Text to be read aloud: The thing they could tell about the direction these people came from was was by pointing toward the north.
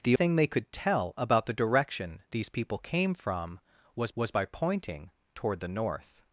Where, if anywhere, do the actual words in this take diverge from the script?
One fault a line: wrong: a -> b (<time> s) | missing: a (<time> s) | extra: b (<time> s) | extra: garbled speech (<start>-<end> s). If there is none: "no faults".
no faults